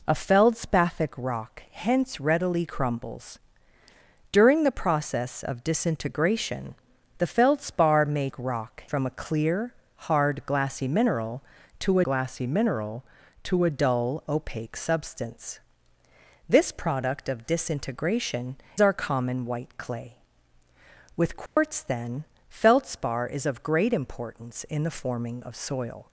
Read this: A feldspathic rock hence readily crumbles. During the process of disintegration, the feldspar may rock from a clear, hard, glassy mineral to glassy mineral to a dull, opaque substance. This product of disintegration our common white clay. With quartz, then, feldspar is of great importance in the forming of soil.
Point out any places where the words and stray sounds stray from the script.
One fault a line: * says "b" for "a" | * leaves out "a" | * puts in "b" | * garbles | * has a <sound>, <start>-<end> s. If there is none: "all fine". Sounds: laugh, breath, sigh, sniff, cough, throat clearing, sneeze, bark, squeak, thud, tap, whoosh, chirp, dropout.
* has a dropout, 21.5-21.6 s